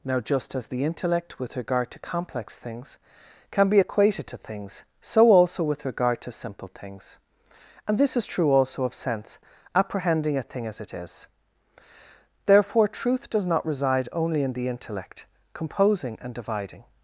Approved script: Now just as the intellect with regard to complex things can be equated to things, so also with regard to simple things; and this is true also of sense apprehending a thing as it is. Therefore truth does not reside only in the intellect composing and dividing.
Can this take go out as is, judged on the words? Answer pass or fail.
pass